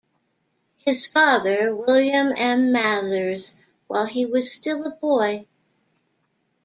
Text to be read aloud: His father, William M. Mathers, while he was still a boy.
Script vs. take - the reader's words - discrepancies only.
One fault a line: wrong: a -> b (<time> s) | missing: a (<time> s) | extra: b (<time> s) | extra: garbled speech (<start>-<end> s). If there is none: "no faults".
no faults